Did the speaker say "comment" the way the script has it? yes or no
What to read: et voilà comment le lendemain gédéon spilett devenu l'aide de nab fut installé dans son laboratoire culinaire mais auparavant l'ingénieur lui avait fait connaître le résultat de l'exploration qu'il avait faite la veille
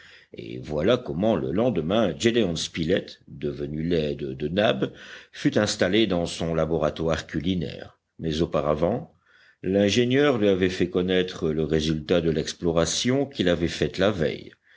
yes